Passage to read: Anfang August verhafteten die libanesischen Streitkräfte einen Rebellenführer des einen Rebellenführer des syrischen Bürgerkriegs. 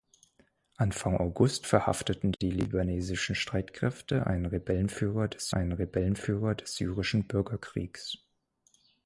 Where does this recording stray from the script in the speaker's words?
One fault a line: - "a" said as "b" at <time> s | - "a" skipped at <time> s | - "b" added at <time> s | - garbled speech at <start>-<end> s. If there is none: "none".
none